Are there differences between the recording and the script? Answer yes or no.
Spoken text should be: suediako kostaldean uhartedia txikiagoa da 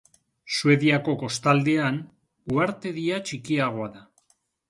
no